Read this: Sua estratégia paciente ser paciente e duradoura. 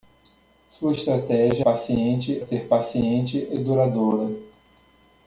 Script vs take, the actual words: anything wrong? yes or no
no